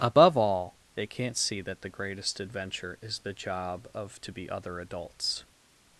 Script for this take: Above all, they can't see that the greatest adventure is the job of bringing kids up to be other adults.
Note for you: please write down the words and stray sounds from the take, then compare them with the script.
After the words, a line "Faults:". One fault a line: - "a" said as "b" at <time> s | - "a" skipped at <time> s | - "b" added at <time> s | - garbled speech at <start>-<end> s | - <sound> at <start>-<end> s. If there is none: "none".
Above all, they can't see that the greatest adventure is the job of to be other adults.
Faults:
- "bringing kids up" skipped at 4.2 s